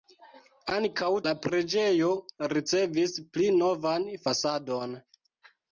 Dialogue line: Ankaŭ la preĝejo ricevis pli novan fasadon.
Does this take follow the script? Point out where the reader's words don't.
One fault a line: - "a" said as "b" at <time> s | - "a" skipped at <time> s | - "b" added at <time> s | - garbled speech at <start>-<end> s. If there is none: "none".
none